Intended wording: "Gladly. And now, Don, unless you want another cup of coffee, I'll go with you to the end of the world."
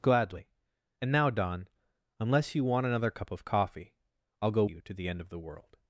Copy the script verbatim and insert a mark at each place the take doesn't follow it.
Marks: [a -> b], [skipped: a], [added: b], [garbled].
"Gladly. And now, Don, unless you want another cup of coffee, I'll go [skipped: with] you to the end of the world."